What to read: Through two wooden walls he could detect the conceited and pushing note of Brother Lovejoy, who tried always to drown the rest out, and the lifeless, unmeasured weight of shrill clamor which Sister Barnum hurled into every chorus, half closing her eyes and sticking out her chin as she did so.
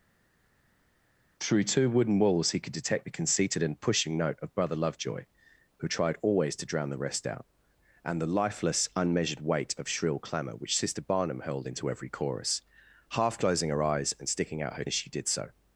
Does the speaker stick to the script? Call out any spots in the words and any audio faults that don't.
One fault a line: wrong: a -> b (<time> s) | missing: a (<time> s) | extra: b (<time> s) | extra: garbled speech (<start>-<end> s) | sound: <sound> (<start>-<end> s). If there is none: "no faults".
missing: chin (14.8 s)